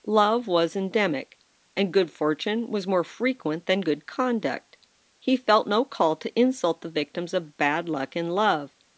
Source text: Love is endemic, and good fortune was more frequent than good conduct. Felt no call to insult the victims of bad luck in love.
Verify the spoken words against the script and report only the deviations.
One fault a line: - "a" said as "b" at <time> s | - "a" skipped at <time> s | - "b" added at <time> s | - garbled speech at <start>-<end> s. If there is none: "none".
- "is" said as "was" at 0.5 s
- "He" added at 5.2 s